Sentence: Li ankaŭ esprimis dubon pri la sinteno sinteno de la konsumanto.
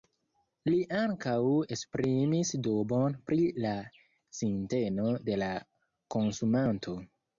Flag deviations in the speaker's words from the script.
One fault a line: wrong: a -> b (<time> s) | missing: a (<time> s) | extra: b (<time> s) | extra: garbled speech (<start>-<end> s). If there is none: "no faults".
missing: sinteno (5.1 s)